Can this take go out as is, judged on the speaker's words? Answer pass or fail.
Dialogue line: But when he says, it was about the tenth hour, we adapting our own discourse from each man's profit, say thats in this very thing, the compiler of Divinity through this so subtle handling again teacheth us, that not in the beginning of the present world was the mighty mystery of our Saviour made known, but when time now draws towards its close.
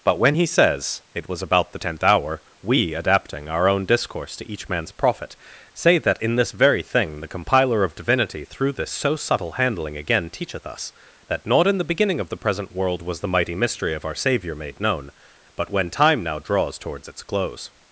fail